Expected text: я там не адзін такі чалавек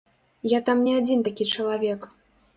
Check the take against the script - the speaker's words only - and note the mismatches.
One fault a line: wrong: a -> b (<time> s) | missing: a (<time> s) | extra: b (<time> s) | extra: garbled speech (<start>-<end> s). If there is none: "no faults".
no faults